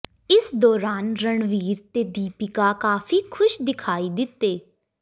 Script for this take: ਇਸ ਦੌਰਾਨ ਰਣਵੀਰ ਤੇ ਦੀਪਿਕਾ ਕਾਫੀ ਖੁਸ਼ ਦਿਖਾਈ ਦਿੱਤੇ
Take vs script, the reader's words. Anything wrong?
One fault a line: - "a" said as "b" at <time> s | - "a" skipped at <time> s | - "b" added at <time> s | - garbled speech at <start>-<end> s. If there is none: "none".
none